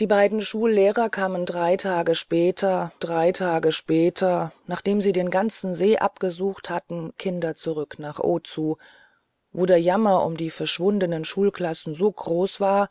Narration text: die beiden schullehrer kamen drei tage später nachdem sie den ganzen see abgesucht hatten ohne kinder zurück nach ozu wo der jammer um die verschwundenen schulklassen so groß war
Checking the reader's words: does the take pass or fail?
fail